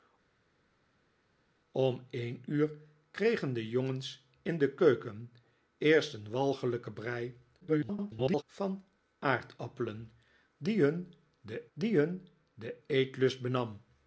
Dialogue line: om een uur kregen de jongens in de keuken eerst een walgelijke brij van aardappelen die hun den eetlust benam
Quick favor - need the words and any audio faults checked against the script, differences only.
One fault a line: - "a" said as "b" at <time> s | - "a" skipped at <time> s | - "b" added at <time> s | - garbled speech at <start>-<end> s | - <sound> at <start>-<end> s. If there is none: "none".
- garbled speech at 7.6-8.4 s
- "die hun den" added at 11.7 s